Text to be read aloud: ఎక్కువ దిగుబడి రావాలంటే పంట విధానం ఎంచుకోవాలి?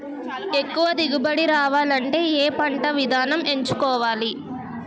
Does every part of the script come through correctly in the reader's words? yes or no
no